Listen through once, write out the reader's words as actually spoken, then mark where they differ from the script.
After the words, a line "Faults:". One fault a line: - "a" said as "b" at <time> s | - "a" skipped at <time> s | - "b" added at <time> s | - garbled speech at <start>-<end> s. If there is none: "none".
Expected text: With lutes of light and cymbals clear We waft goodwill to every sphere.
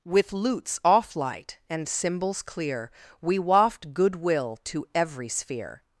With lutes off light and cymbals clear We waft goodwill to every sphere.
Faults:
- "of" said as "off" at 0.8 s